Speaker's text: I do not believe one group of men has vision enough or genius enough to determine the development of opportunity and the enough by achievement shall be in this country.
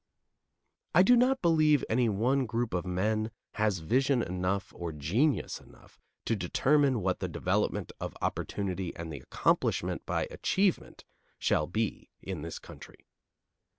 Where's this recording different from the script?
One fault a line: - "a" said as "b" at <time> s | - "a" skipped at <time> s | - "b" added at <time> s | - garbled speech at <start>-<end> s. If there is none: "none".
- "any" added at 1.9 s
- "what" added at 7.0 s
- "enough" said as "accomplishment" at 9.2 s